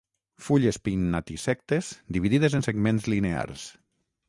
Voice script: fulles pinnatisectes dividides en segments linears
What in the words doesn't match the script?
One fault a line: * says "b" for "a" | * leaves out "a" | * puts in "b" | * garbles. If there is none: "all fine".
all fine